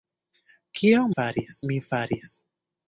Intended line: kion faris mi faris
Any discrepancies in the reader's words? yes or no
no